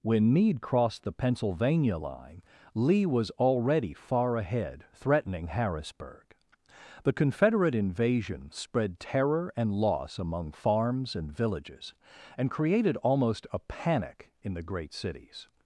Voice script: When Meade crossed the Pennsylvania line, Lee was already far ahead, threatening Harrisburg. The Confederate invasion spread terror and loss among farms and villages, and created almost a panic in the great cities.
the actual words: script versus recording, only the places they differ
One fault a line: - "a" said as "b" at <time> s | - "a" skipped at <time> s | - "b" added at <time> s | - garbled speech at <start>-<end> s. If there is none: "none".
none